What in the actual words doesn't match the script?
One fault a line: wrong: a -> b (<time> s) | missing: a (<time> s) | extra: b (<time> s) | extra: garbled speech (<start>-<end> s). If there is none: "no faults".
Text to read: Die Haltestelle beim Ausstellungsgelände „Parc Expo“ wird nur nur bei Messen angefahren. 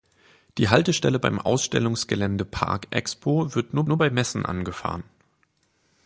no faults